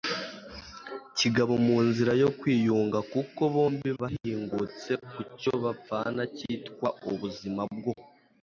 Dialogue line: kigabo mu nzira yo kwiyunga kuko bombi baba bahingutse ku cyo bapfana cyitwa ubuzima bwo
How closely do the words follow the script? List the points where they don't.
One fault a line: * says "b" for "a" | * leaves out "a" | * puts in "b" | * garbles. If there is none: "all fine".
* leaves out "baba"